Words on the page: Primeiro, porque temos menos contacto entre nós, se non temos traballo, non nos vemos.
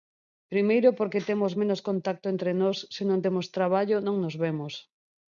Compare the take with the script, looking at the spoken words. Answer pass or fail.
pass